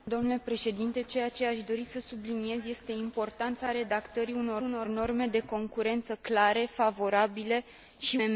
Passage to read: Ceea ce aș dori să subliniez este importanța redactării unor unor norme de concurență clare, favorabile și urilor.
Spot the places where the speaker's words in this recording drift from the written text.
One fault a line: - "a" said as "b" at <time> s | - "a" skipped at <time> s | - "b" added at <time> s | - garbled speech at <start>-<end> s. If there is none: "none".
none